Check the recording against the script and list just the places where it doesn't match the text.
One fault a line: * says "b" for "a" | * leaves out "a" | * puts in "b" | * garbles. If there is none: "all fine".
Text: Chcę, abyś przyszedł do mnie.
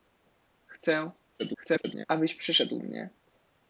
* garbles
* leaves out "do"